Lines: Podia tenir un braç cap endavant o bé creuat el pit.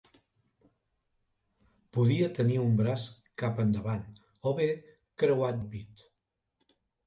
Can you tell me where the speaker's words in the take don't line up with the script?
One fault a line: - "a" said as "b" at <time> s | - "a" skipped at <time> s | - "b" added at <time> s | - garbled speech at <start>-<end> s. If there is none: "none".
none